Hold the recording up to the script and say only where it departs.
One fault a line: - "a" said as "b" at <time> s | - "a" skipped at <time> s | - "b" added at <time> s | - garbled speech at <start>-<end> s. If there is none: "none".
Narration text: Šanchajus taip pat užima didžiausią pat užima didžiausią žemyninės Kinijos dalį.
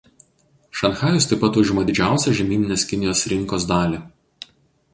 - "pat užima didžiausią" skipped at 2.3 s
- "rinkos" added at 3.3 s